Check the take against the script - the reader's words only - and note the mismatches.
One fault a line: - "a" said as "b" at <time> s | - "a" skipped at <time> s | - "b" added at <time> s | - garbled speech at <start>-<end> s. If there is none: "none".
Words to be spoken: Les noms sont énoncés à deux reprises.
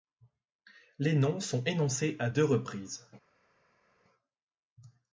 none